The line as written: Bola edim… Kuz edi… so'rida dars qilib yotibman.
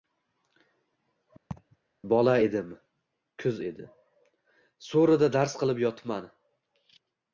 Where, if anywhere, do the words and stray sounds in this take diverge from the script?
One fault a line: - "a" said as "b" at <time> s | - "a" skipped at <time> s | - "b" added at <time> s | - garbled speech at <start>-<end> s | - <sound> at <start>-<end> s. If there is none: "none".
- laugh at 1.5-1.8 s